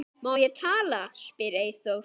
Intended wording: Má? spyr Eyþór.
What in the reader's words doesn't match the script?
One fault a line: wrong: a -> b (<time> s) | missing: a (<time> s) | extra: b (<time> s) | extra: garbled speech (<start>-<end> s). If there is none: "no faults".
extra: ég tala (0.4 s)